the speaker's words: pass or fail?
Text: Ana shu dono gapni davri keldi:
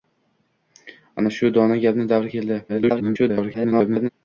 fail